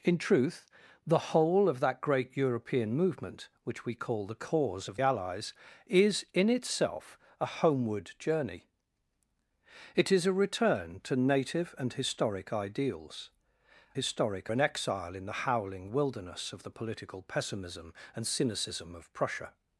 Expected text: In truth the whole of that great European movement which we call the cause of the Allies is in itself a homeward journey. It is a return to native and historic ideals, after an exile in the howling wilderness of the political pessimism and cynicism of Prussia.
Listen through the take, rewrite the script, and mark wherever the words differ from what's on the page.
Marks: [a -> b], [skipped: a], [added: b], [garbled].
In truth the whole of that great European movement which we call the cause of [skipped: the] Allies is in itself a homeward journey. It is a return to native and historic ideals, [after -> historic] an exile in the howling wilderness of the political pessimism and cynicism of Prussia.